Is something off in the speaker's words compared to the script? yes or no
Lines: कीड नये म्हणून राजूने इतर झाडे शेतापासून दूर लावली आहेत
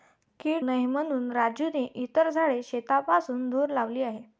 no